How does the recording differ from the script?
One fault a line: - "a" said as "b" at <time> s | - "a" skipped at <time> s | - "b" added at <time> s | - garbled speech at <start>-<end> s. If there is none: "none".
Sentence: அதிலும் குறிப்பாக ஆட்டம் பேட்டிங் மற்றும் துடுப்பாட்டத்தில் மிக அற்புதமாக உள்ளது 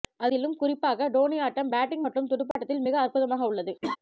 - "டோனி" added at 1.1 s